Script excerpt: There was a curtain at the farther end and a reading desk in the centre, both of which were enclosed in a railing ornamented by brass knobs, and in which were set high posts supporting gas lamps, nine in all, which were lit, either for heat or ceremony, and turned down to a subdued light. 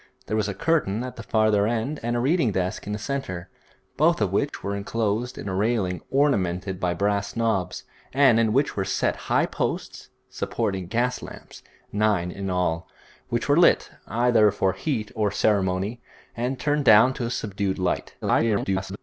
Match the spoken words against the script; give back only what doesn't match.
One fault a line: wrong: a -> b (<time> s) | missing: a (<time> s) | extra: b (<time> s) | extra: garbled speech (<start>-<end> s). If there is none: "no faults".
extra: garbled speech (18.2-19.0 s)